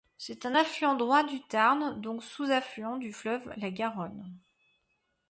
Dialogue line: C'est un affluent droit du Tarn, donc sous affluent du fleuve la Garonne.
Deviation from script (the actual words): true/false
false